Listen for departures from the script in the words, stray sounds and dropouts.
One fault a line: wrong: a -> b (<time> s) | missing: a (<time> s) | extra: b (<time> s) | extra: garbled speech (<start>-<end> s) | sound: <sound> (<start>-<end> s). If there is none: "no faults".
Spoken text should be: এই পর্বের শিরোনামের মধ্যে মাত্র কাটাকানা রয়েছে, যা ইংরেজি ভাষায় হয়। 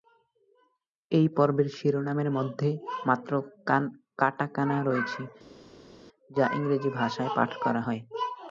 extra: পাঠ করা (7.4 s)